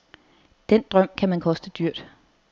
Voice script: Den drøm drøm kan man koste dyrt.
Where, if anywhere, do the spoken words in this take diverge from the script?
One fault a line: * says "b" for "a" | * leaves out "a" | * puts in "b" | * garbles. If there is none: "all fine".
* leaves out "drøm"